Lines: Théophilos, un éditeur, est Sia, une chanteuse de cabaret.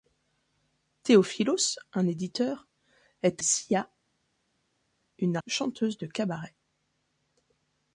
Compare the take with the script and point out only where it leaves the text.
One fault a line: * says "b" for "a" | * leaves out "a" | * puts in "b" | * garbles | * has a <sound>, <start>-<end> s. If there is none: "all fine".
all fine